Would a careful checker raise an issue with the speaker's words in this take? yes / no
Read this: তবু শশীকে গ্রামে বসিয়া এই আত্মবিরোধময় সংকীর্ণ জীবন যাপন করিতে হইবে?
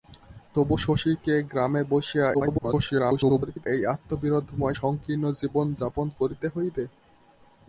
yes